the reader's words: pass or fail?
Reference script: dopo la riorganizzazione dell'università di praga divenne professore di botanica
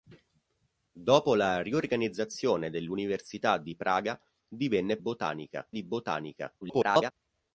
fail